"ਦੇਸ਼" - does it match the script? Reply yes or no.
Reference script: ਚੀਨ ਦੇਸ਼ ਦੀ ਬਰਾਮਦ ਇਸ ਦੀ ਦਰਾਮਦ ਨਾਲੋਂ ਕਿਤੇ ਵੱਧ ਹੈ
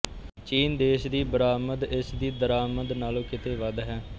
yes